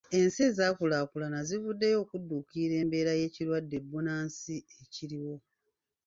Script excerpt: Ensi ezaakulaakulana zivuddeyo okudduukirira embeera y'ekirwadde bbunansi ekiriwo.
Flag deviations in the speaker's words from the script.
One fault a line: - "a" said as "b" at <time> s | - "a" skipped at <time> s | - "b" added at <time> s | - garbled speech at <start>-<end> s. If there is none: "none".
none